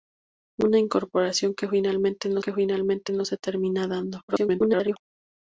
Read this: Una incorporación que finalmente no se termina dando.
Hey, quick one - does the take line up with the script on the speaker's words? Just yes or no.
no